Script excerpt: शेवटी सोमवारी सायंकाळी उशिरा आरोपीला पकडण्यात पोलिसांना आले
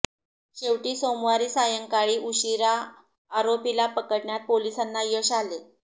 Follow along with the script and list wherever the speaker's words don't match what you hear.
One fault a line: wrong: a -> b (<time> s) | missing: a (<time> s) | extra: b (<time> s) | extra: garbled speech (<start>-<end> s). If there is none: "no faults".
extra: यश (5.1 s)